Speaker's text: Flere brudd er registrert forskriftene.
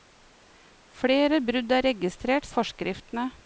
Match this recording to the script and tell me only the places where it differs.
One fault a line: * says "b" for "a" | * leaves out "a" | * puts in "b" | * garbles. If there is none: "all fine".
all fine